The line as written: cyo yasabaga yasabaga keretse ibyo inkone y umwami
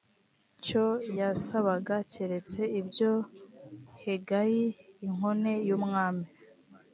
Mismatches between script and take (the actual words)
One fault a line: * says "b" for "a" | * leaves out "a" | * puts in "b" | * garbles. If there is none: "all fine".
* leaves out "yasabaga"
* puts in "hegayi"